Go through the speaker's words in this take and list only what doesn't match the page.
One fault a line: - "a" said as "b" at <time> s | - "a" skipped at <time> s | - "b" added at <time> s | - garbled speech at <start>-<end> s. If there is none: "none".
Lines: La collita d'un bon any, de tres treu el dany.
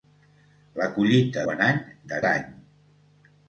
- "d'un" skipped at 1.4 s
- "tres treu el" skipped at 2.2 s